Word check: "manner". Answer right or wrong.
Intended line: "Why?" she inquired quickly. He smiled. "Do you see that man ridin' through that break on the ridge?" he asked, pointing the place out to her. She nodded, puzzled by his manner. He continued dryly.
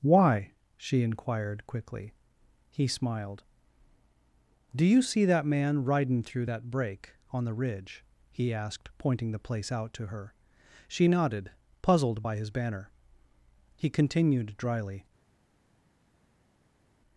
wrong